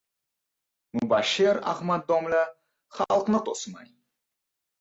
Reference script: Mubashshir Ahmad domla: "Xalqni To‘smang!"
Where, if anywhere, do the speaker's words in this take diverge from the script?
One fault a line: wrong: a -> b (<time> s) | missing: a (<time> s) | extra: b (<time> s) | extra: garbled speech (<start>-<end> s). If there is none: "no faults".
no faults